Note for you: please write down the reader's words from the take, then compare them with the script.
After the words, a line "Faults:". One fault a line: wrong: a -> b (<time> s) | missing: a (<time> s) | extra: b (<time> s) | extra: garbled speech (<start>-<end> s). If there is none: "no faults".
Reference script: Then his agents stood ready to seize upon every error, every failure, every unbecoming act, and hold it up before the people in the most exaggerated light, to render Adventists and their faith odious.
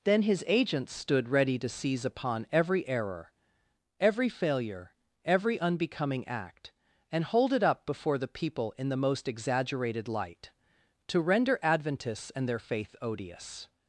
Then his agents stood ready to seize upon every error, every failure, every unbecoming act, and hold it up before the people in the most exaggerated light, to render Adventists and their faith odious.
Faults:
no faults